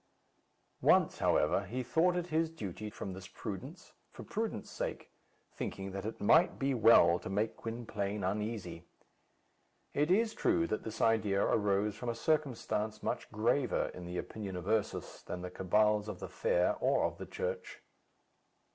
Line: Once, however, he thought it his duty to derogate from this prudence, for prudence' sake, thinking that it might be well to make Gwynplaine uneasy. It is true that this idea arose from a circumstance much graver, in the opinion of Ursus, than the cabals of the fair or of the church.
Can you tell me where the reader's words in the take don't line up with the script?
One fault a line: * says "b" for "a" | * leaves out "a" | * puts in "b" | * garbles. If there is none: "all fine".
* leaves out "to derogate"